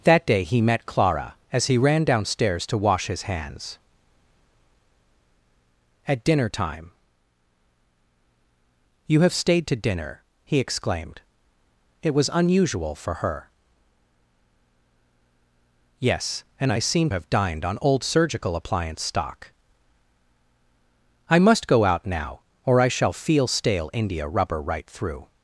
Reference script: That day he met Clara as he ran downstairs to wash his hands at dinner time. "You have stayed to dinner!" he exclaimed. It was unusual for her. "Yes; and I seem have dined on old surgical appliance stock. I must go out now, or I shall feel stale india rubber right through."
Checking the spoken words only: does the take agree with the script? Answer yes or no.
yes